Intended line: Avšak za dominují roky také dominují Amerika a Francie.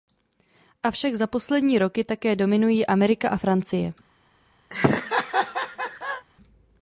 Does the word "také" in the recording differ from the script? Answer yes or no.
no